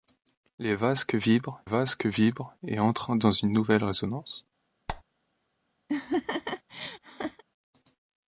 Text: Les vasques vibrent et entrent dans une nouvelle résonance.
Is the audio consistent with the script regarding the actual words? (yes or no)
no